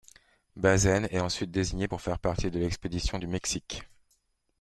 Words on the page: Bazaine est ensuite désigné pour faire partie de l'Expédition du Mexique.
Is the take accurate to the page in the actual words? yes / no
yes